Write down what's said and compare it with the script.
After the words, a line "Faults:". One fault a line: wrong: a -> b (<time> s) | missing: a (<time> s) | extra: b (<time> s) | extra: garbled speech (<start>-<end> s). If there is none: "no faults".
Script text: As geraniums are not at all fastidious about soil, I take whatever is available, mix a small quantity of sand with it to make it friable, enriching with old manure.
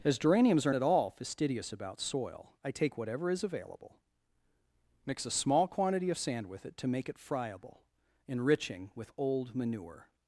As geraniums are at all fastidious about soil, I take whatever is available, mix a small quantity of sand with it to make it friable, enriching with old manure.
Faults:
missing: not (0.7 s)